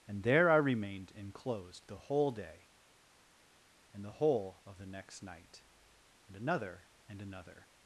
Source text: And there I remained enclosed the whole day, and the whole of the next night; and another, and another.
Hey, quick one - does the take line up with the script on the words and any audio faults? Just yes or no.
yes